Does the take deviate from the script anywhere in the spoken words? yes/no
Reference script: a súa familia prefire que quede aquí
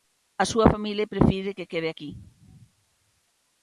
no